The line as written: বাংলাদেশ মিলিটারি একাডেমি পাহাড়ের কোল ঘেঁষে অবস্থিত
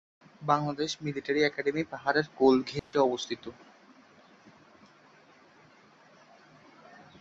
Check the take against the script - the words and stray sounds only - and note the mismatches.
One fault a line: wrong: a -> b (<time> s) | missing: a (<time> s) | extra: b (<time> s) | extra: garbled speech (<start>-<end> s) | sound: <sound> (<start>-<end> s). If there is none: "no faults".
sound: dropout (2.8-2.9 s)